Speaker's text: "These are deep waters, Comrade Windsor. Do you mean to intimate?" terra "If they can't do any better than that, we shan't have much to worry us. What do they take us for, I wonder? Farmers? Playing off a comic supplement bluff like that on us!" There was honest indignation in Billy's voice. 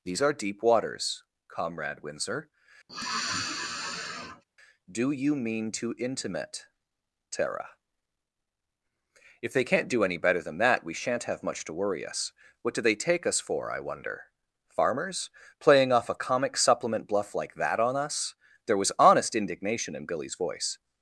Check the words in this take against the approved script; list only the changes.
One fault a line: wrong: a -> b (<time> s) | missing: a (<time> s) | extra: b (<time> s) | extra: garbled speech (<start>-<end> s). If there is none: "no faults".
no faults